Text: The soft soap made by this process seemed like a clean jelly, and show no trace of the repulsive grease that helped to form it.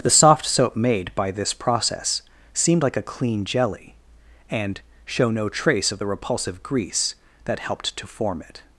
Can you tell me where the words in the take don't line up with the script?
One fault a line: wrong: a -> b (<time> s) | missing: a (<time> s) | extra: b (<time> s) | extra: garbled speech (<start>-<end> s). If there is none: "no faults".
no faults